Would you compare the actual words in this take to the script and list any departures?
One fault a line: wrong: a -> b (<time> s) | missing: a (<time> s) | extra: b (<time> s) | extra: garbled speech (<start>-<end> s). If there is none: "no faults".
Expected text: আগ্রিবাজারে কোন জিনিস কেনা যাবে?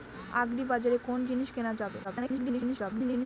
extra: garbled speech (2.0-3.3 s)